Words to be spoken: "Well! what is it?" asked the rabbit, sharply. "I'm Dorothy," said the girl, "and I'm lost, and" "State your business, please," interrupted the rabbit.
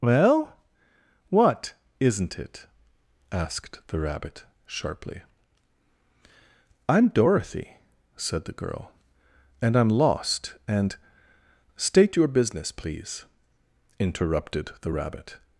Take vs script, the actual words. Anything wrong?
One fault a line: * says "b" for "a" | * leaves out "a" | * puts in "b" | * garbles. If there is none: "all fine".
* says "isn't" for "is"